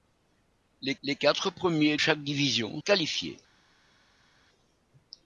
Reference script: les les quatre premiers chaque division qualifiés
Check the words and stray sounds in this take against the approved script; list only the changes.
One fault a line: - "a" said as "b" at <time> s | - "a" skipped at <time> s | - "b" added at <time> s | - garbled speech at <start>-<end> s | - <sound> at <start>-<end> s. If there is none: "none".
none